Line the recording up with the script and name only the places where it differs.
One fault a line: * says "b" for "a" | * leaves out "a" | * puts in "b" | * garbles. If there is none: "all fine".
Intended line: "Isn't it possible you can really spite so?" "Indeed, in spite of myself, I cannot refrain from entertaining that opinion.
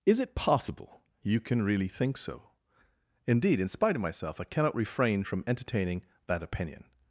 * says "Is" for "Isn't"
* says "think" for "spite"